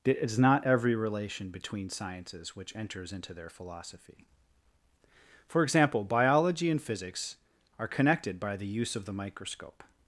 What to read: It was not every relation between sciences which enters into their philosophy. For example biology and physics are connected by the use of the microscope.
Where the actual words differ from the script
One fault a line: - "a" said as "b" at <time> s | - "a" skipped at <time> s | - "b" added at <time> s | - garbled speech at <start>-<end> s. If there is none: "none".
- "was" said as "is" at 0.2 s